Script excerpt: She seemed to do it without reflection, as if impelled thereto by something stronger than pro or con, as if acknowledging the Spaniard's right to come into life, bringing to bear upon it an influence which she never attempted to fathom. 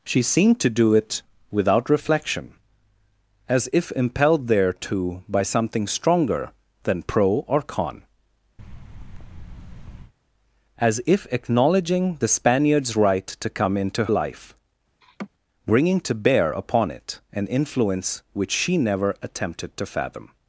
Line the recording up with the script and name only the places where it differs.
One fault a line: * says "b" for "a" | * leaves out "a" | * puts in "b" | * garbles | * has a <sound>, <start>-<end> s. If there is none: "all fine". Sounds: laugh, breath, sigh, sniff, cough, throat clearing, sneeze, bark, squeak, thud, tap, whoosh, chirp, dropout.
* has a thud, 8.6-10.1 s
* has a laugh, 15.0-15.3 s